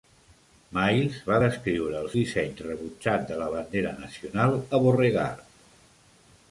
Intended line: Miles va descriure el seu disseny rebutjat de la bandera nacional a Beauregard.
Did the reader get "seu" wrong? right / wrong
wrong